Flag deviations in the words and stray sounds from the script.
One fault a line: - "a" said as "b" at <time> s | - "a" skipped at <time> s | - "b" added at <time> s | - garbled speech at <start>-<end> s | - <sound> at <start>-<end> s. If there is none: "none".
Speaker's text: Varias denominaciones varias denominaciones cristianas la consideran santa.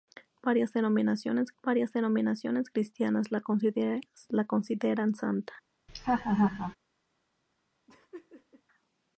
- laugh at 5.9-6.8 s
- laugh at 7.9-8.6 s